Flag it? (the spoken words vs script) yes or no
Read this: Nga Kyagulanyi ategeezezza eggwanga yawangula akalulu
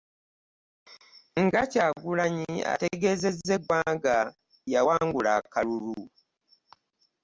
no